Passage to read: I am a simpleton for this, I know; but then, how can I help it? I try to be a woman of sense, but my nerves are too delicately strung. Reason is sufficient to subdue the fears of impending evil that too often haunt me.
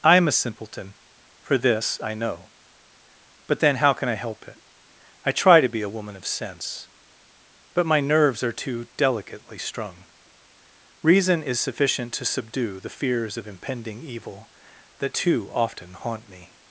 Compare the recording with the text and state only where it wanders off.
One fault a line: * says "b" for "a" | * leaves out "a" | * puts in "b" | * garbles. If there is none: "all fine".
all fine